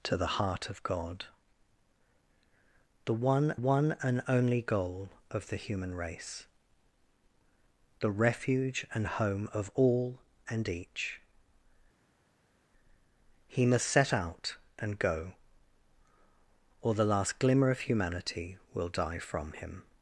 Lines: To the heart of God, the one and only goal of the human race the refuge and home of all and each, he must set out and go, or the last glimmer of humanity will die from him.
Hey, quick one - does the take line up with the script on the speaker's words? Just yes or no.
no